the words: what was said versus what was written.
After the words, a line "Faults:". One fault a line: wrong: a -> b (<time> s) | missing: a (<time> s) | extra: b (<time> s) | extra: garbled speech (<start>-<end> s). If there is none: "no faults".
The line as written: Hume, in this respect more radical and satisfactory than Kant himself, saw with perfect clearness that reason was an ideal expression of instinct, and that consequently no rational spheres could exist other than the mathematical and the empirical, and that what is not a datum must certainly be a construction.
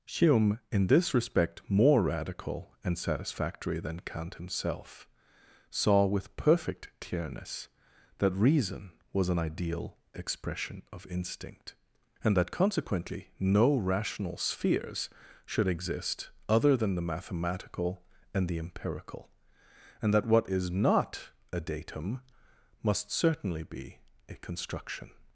Hume, in this respect more radical and satisfactory than Kant himself, saw with perfect clearness that reason was an ideal expression of instinct, and that consequently no rational spheres should exist other than the mathematical and the empirical, and that what is not a datum must certainly be a construction.
Faults:
wrong: could -> should (15.4 s)